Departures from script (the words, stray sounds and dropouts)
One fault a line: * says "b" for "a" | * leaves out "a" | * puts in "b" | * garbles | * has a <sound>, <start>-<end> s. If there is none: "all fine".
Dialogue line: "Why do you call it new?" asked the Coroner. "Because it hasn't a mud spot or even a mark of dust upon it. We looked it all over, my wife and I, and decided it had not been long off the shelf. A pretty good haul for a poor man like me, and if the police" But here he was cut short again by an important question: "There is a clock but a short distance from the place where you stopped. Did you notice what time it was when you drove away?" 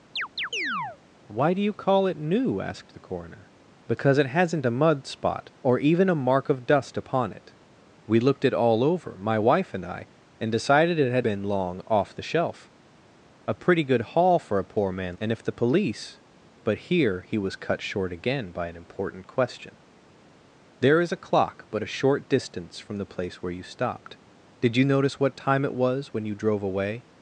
* has a chirp, 0.2-1.0 s
* leaves out "not"
* leaves out "like me"